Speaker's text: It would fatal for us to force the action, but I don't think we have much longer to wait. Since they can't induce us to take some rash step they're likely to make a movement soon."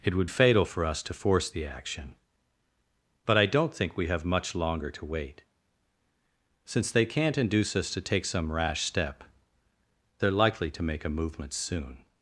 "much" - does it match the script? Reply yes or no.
yes